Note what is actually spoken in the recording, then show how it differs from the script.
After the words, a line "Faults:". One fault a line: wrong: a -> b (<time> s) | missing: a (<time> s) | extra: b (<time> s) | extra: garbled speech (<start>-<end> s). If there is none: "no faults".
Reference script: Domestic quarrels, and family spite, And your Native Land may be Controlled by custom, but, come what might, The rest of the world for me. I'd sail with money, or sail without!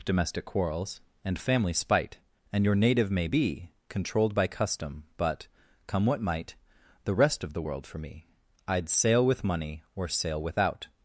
Domestic quarrels, and family spite, And your Native may be Controlled by custom, but, come what might, The rest of the world for me. I'd sail with money, or sail without!
Faults:
missing: Land (3.1 s)